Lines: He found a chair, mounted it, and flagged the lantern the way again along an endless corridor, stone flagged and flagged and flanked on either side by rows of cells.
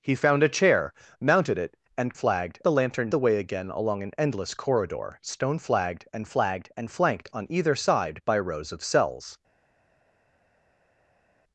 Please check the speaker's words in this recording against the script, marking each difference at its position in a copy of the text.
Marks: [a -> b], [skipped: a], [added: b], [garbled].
He found a chair, mounted it, and flagged the lantern the way again along an endless corridor, stone flagged and flagged and flanked on either side by rows of cells.